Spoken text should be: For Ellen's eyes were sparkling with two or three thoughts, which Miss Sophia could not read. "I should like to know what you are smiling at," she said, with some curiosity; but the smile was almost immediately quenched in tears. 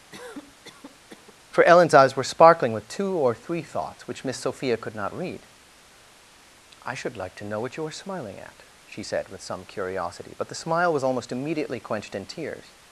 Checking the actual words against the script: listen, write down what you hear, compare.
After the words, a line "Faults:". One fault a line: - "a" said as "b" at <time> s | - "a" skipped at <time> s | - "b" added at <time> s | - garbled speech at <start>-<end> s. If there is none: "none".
For Ellen's eyes were sparkling with two or three thoughts, which Miss Sophia could not read. "I should like to know what you are smiling at," she said, with some curiosity; but the smile was almost immediately quenched in tears.
Faults:
none